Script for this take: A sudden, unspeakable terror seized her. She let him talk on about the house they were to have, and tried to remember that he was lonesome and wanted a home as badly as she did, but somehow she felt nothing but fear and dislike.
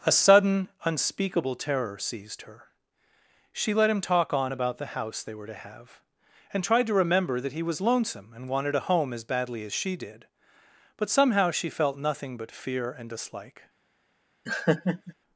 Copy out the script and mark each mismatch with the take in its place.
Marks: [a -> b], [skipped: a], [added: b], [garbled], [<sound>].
A sudden, unspeakable terror seized her. She let him talk on about the house they were to have, and tried to remember that he was lonesome and wanted a home as badly as she did, but somehow she felt nothing but fear and dislike. [laugh]